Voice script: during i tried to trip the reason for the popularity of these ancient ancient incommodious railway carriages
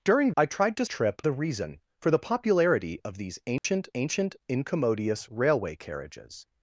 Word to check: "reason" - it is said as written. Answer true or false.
true